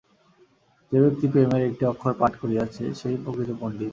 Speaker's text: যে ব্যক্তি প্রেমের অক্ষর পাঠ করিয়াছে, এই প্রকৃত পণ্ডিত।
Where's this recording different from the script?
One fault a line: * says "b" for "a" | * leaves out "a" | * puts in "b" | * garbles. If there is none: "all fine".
* puts in "একটি"
* says "সে-ই" for "এই"